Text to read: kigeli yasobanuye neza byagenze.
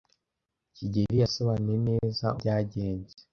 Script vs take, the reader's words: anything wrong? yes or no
no